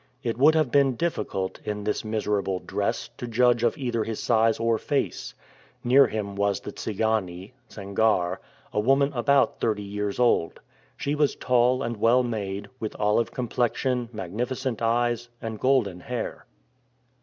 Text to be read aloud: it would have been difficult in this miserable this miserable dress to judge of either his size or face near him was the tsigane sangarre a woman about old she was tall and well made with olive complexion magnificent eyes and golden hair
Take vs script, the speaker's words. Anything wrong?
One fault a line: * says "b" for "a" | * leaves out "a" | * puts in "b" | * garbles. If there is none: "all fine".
* leaves out "this miserable"
* puts in "thirty years"